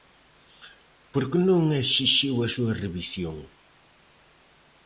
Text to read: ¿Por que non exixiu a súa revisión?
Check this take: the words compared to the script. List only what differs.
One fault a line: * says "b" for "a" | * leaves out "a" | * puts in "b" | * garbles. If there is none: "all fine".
all fine